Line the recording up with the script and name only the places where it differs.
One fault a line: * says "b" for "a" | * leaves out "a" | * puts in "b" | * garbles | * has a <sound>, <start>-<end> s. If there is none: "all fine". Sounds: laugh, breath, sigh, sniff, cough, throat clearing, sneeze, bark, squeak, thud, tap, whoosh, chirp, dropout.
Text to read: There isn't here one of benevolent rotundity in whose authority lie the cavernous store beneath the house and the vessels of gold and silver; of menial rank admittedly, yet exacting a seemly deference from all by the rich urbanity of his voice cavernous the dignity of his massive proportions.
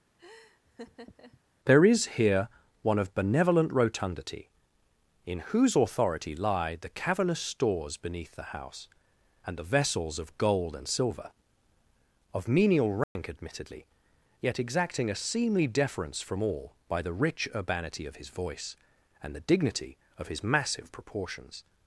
* has a laugh, 0.2-1.4 s
* says "is" for "isn't"
* says "stores" for "store"
* has a dropout, 13.0-13.2 s
* says "and" for "cavernous"